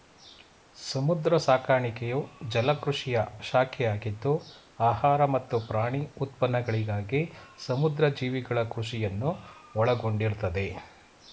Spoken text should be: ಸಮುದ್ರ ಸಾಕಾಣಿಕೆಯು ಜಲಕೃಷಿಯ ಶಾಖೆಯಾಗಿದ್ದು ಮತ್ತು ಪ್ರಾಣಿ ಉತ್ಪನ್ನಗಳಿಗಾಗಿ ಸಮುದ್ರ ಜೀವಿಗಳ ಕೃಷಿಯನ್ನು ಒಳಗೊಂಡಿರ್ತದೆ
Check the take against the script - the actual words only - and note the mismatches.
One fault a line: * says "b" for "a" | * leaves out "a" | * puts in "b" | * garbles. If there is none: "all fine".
* puts in "ಆಹಾರ"